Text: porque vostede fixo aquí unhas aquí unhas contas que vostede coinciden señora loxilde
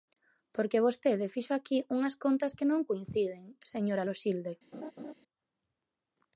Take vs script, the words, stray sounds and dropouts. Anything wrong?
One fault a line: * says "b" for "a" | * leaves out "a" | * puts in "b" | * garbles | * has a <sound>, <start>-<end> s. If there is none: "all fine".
* leaves out "aquí unhas"
* says "non" for "vostede"
* has a laugh, 4.7-5.1 s